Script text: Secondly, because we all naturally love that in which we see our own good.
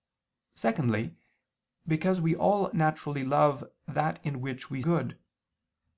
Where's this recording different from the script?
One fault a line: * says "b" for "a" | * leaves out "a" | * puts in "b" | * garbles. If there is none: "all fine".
* leaves out "see our own"